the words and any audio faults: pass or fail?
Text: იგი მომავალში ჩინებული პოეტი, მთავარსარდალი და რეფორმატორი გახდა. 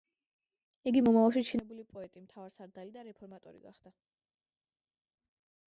pass